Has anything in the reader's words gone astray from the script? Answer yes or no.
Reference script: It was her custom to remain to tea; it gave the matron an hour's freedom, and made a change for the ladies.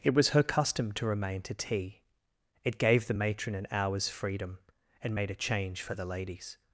no